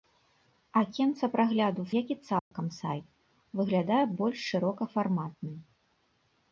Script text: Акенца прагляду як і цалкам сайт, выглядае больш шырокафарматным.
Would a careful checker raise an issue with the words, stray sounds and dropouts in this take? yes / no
yes